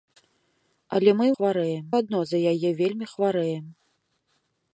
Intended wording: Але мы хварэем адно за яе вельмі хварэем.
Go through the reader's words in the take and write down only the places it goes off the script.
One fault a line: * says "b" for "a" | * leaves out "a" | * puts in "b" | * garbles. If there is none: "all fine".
all fine